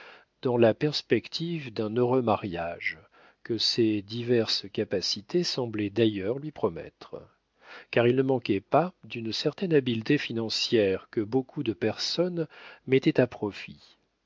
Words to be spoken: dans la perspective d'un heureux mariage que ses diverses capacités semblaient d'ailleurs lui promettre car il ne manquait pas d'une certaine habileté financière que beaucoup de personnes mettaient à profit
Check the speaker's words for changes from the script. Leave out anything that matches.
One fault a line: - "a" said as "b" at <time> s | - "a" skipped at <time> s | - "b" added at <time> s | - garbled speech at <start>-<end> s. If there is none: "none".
none